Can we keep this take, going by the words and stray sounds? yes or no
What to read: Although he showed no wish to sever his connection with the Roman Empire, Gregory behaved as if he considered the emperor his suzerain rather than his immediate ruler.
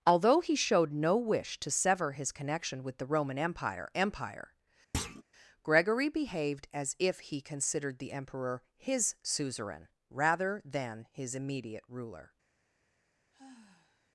no